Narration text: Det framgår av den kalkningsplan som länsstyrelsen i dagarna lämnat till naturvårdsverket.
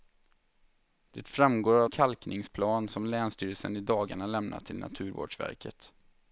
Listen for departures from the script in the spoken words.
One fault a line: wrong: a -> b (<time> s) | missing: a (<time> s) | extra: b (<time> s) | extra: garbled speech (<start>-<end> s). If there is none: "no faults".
missing: den (1.9 s)